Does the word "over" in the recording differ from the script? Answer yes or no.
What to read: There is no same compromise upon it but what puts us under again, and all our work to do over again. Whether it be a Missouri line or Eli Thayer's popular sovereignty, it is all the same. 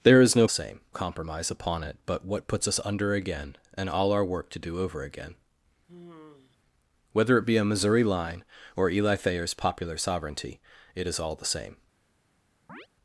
no